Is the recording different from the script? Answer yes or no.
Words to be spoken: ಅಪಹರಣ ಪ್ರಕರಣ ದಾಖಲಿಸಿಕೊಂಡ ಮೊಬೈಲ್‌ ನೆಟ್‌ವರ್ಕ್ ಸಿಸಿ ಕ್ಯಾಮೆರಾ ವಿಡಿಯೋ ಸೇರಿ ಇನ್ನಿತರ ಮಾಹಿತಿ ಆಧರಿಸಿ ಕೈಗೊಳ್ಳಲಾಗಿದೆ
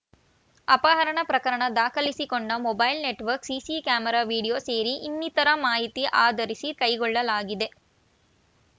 no